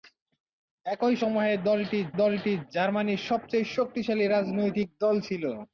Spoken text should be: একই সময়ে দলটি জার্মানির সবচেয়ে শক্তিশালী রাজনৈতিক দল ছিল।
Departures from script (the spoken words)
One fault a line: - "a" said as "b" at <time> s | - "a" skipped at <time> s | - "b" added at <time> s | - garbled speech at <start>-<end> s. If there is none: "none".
- "দলটি" added at 2.2 s